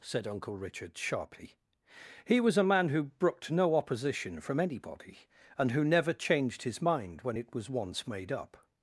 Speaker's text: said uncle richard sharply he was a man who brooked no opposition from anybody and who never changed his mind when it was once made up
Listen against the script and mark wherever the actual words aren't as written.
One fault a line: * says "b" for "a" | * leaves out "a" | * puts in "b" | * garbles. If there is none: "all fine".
all fine